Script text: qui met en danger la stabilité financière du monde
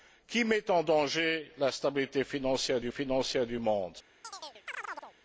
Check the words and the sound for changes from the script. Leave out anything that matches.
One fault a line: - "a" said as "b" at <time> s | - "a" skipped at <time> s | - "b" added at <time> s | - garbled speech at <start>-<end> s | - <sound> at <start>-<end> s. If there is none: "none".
- "financière du" added at 2.9 s
- chirp at 4.2-5.2 s